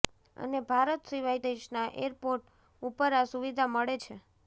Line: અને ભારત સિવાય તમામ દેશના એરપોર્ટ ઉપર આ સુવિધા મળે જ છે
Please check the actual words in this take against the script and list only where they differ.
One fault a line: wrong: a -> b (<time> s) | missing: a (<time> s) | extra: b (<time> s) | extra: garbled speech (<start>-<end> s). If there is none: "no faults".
missing: તમામ (1.4 s)
missing: જ (4.0 s)